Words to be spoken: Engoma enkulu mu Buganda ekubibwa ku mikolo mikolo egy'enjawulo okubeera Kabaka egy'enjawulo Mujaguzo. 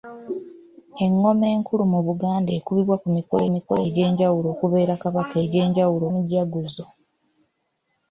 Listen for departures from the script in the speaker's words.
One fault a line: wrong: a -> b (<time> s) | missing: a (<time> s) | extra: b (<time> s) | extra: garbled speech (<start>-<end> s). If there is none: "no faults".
no faults